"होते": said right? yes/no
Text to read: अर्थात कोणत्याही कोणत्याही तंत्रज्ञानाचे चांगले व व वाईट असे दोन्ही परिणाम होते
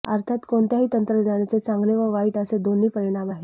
no